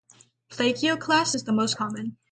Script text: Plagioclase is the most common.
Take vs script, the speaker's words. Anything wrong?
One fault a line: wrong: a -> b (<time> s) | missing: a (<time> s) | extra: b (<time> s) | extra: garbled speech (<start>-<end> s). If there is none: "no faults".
no faults